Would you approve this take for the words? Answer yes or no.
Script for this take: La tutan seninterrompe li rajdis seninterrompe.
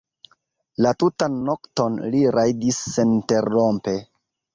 no